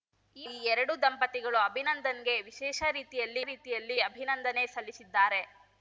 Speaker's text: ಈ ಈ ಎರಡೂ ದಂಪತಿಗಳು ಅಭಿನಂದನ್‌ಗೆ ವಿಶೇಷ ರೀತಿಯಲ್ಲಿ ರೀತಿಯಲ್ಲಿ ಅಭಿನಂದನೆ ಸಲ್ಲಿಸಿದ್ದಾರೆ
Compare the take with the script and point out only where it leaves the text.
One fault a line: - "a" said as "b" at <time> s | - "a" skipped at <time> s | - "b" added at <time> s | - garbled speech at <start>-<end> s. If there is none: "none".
none